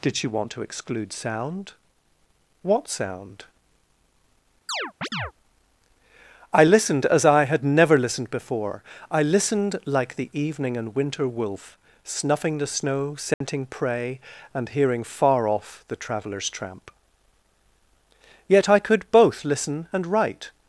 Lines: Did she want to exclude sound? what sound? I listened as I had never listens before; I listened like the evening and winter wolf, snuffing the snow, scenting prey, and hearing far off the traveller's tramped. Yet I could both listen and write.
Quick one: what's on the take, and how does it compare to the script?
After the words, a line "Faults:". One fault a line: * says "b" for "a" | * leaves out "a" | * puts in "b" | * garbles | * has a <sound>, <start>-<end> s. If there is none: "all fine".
Did she want to exclude sound? what sound? I listened as I had never listened before; I listened like the evening and winter wolf, snuffing the snow, scenting prey, and hearing far off the traveller's tramp. Yet I could both listen and write.
Faults:
* has a chirp, 4.7-5.3 s
* says "listened" for "listens"
* has a dropout, 13.3-13.4 s
* says "tramp" for "tramped"